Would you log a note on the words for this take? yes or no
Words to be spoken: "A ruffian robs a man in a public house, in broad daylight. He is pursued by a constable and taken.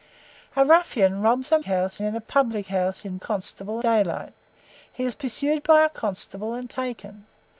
yes